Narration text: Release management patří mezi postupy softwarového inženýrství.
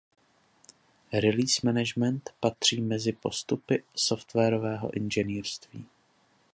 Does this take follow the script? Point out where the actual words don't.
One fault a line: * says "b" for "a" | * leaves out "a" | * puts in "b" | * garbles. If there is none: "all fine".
all fine